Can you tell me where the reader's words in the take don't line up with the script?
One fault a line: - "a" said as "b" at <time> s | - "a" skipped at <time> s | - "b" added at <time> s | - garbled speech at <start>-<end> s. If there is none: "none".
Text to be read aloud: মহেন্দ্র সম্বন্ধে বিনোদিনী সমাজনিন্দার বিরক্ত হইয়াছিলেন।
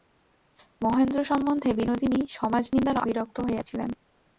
none